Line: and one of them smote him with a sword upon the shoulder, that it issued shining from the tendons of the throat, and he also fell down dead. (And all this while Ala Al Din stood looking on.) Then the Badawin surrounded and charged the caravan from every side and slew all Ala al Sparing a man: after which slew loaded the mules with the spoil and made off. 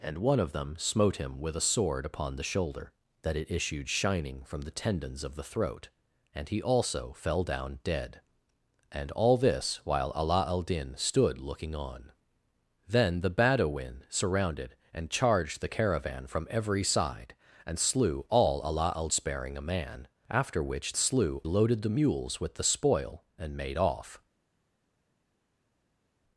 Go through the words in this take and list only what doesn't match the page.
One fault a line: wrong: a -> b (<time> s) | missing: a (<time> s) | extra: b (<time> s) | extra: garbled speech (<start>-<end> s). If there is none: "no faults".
no faults